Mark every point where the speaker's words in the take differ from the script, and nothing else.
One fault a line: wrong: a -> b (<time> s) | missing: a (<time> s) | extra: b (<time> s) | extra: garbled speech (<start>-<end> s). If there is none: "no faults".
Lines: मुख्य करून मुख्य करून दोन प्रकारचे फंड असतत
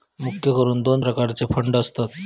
missing: मुख्य करून (0.8 s)